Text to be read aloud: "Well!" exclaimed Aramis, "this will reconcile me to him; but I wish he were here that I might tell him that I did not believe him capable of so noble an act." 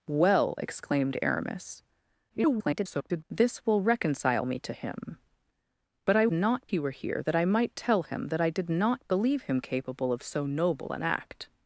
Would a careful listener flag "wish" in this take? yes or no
yes